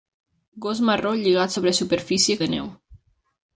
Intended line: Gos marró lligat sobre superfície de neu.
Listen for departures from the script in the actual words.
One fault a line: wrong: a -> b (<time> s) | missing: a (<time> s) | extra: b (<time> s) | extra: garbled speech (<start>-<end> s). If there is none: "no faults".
no faults